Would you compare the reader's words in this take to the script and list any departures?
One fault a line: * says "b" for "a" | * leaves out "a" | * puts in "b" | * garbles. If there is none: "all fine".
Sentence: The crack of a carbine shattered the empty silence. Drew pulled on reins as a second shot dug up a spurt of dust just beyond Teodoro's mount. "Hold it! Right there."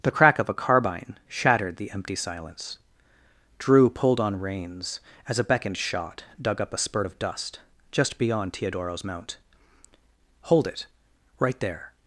* says "beckoned" for "second"